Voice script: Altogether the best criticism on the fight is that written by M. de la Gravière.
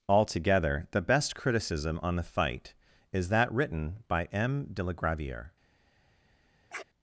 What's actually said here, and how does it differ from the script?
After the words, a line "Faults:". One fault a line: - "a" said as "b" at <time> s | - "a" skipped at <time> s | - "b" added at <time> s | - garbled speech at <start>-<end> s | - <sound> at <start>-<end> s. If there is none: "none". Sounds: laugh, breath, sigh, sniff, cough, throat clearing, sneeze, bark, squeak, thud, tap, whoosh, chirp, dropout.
Altogether the best criticism on the fight is that written by M. de la Gravière.
Faults:
- sniff at 6.7-6.8 s